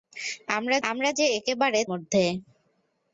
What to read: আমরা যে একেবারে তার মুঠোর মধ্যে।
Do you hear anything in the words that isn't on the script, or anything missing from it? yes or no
yes